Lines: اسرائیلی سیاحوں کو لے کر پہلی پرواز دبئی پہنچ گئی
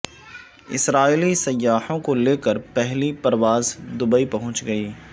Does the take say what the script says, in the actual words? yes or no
yes